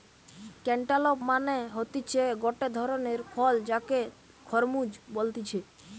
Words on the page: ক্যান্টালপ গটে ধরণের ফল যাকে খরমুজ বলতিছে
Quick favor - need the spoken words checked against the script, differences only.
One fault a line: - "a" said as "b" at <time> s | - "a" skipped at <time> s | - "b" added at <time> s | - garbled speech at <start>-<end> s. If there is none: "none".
- "মানে হতিছে" added at 1.3 s